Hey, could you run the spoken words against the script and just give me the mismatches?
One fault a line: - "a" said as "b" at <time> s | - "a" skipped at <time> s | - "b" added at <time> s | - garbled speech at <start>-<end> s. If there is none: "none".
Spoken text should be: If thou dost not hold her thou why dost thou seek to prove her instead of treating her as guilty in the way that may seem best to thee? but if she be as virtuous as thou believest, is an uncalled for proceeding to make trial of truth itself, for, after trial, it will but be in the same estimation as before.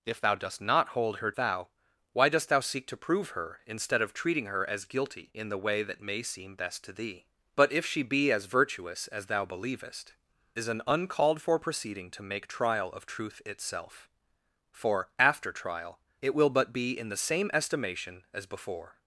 none